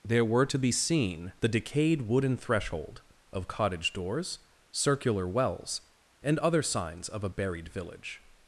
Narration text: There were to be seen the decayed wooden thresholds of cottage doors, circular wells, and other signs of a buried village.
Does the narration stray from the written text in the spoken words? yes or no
yes